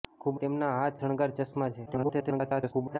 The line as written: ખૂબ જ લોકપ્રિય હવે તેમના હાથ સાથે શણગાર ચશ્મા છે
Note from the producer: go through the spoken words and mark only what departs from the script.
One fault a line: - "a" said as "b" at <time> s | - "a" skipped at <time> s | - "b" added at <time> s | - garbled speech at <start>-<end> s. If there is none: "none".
- "જ લોકપ્રિય હવે" skipped at 0.4 s
- "સાથે" skipped at 1.0 s
- garbled speech at 1.9-3.0 s